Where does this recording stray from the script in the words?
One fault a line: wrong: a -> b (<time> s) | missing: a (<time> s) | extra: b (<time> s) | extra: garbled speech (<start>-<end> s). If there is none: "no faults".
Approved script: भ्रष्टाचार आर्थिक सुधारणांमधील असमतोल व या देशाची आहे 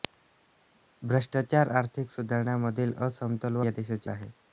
no faults